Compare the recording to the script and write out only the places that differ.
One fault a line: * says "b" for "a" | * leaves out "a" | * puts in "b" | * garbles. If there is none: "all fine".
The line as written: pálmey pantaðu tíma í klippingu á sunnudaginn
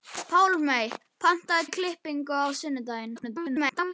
* leaves out "tíma"
* garbles